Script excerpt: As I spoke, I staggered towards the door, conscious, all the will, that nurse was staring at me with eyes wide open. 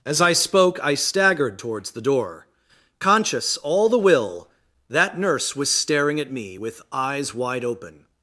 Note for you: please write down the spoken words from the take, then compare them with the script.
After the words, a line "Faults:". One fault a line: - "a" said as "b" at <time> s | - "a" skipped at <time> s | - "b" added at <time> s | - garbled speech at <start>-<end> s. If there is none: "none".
As I spoke, I staggered towards the door, conscious, all the will, that nurse was staring at me with eyes wide open.
Faults:
none